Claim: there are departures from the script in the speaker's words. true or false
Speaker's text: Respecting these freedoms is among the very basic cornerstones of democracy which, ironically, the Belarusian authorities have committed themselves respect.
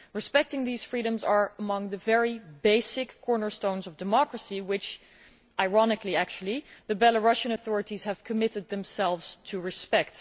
true